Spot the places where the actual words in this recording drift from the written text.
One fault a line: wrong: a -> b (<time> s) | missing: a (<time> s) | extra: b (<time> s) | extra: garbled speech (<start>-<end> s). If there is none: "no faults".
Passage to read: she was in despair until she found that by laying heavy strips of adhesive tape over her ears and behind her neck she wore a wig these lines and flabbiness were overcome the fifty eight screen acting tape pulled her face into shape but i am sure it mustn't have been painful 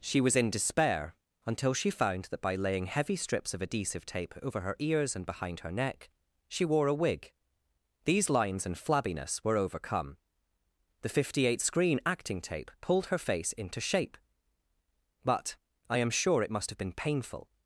wrong: mustn't -> must (16.5 s)